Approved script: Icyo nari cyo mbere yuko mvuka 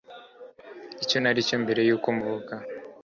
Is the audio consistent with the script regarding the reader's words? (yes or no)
yes